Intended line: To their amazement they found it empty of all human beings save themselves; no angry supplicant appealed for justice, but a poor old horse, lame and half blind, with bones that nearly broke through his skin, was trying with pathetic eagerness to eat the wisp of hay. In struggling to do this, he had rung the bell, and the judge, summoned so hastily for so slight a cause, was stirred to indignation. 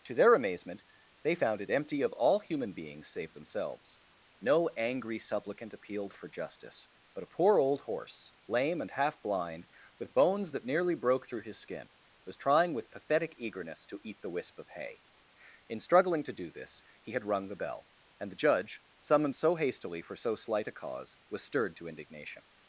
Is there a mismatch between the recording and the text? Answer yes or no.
no